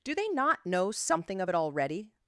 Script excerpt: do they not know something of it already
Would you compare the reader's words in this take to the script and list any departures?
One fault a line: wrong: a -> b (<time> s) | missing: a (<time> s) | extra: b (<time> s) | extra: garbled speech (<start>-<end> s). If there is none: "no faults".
no faults